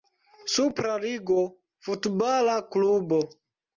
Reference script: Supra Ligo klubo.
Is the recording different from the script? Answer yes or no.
yes